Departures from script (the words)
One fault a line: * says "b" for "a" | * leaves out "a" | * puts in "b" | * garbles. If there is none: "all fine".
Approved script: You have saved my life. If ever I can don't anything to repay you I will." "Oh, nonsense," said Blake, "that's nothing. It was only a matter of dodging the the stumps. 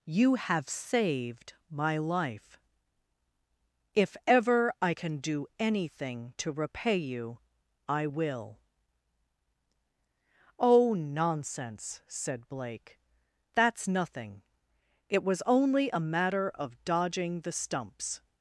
* says "do" for "don't"
* leaves out "the"